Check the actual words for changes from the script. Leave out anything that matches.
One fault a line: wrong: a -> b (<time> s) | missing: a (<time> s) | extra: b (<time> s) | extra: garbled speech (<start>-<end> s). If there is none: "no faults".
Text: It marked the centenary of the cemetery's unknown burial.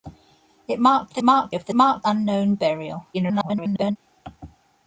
wrong: centenary -> marked (1.2 s)
wrong: cemetery's -> marked (1.7 s)
extra: garbled speech (3.1-4.0 s)